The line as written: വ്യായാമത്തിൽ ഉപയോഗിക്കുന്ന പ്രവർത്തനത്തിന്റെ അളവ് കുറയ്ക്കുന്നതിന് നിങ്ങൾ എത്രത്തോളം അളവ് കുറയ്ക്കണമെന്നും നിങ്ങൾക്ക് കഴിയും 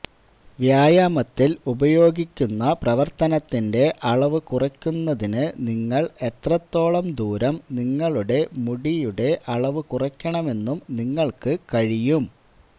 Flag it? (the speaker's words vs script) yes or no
yes